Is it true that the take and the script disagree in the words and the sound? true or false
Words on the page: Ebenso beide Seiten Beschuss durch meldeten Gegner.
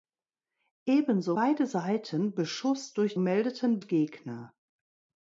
false